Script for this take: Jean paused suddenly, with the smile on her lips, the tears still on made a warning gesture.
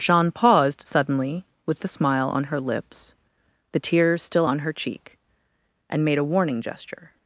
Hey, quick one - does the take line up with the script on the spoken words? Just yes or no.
no